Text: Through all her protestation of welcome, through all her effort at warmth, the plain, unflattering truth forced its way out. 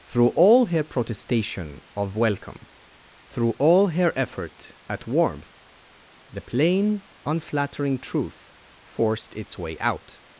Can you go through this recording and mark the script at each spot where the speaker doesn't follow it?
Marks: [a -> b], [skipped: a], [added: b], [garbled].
Through all her protestation of welcome, through all her effort at warmth, the plain, unflattering truth forced its way out.